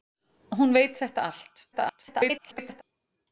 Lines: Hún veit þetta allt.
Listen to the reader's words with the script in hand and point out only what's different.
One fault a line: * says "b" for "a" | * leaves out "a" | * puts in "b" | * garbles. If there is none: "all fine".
* garbles